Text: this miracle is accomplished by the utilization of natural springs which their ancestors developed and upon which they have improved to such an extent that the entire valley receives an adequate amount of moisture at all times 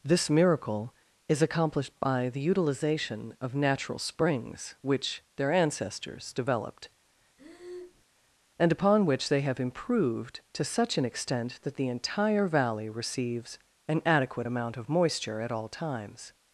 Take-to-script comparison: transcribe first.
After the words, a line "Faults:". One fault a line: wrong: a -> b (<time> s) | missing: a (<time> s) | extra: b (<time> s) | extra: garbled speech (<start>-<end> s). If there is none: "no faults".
this miracle is accomplished by the utilization of natural springs which their ancestors developed and upon which they have improved to such an extent that the entire valley receives an adequate amount of moisture at all times
Faults:
no faults